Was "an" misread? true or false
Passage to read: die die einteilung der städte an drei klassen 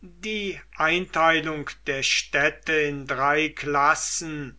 true